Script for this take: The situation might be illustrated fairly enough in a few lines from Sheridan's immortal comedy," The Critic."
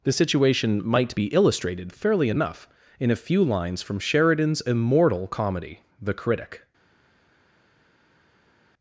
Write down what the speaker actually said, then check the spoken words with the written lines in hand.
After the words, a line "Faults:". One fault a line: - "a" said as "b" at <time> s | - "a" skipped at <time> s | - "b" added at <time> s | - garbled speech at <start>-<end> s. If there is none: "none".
The situation might be illustrated fairly enough in a few lines from Sheridan's immortal comedy," The Critic."
Faults:
none